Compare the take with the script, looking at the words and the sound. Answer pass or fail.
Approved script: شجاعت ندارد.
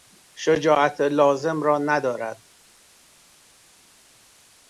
fail